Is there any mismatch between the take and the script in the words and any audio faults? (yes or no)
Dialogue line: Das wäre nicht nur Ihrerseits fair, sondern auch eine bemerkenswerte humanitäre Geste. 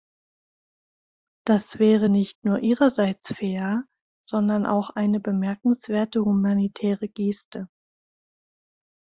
no